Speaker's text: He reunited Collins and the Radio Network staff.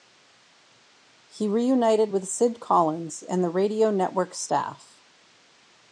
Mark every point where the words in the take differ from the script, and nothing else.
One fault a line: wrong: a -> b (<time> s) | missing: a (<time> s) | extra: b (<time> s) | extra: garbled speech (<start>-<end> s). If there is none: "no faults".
extra: with Sid (2.1 s)